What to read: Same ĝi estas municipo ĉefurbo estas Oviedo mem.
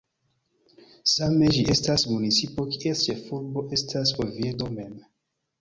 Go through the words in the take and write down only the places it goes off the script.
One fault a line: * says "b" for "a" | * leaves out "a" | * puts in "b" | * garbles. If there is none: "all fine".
* puts in "kies"